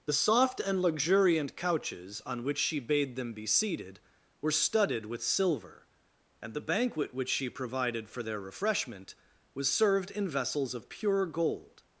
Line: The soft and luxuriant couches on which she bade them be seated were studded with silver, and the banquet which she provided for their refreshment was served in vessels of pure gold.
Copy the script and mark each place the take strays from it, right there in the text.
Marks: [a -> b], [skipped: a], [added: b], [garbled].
The soft and luxuriant couches on which she bade them be seated were studded with silver, and the banquet which she provided for their refreshment was served in vessels of pure gold.